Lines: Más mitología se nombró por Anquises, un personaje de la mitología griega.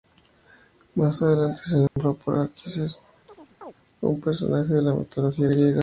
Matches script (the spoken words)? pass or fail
fail